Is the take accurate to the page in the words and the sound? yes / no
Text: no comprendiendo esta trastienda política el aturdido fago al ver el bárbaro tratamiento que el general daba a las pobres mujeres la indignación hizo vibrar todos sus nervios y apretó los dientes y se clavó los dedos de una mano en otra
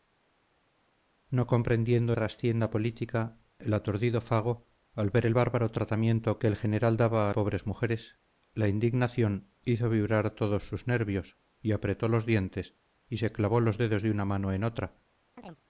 no